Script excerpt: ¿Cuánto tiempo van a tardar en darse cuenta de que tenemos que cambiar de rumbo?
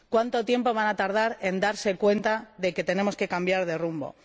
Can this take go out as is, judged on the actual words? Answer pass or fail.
pass